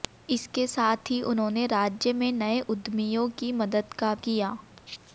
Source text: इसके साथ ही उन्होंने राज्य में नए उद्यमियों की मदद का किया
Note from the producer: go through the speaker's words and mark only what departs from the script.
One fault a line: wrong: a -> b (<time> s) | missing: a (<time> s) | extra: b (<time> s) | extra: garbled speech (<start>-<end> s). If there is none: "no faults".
no faults